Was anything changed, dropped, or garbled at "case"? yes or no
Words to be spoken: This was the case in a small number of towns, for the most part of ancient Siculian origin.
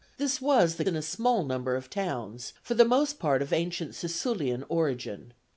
yes